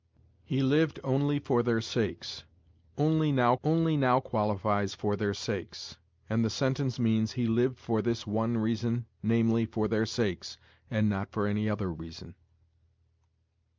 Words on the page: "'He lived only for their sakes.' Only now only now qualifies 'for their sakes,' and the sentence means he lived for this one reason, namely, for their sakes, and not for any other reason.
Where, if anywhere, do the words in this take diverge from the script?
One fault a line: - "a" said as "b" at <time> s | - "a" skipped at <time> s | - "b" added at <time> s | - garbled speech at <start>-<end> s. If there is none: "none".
none